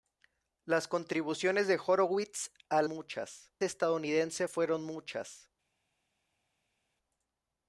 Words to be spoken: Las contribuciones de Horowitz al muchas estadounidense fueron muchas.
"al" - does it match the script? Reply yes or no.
yes